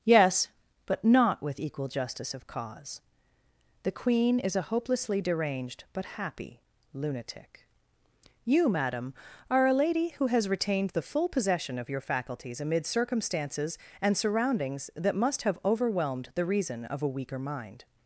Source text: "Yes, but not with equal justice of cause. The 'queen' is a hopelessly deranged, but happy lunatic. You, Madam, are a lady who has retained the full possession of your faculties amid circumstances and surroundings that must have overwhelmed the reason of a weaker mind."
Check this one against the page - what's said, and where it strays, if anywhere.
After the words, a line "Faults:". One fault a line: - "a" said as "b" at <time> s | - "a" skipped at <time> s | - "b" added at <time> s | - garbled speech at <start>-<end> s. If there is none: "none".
"Yes, but not with equal justice of cause. The 'queen' is a hopelessly deranged, but happy lunatic. You, Madam, are a lady who has retained the full possession of your faculties amid circumstances and surroundings that must have overwhelmed the reason of a weaker mind."
Faults:
none